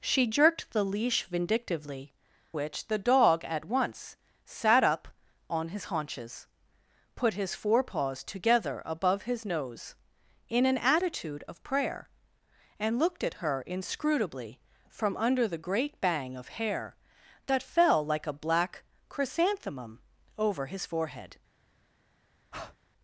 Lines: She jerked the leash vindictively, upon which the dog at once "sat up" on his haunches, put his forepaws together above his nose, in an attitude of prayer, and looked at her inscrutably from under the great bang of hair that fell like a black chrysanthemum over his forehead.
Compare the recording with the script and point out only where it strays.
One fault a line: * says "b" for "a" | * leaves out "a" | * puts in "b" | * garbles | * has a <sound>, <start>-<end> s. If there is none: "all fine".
* leaves out "upon"
* has a breath, 22.5-22.8 s